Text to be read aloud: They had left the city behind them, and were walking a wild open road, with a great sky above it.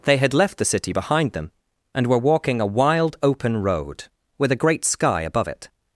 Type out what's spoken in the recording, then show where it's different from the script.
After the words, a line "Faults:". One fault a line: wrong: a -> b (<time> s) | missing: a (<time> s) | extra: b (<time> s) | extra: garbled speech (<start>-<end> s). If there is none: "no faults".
They had left the city behind them, and were walking a wild open road, with a great sky above it.
Faults:
no faults